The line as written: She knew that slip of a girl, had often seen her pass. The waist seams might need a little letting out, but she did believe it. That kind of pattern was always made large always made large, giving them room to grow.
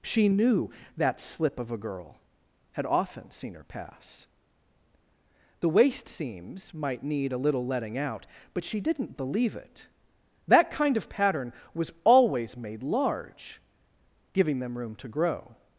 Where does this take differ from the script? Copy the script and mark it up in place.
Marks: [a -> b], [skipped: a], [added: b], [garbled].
She knew that slip of a girl, had often seen her pass. The waist seams might need a little letting out, but she [did -> didn't] believe it. That kind of pattern was always made large [skipped: always made large,] giving them room to grow.